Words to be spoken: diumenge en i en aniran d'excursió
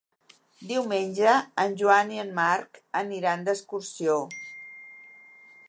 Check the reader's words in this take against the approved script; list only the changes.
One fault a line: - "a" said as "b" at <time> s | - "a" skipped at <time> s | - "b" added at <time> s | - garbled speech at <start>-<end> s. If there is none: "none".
- "joan" added at 1.8 s
- "marc" added at 2.4 s